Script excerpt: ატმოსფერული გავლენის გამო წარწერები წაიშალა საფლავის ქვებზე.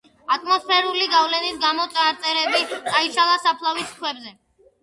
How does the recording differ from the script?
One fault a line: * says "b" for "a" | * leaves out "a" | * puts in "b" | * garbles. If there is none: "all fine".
all fine